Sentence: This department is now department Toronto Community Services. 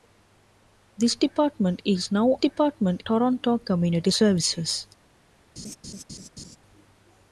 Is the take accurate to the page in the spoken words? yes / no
yes